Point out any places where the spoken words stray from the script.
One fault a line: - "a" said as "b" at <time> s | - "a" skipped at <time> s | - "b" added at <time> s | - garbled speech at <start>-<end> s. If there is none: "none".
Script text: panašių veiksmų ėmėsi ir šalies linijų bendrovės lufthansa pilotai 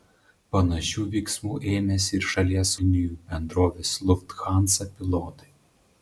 none